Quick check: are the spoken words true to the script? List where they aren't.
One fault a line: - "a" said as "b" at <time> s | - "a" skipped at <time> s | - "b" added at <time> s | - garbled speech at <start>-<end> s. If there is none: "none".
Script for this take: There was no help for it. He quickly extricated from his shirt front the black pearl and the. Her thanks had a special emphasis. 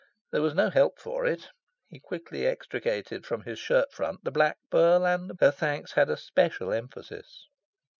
none